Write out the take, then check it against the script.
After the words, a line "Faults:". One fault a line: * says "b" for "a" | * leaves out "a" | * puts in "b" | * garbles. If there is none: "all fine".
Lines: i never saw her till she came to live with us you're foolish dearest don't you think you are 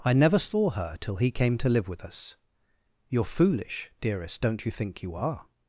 i never saw her till he came to live with us you're foolish dearest don't you think you are
Faults:
* says "he" for "she"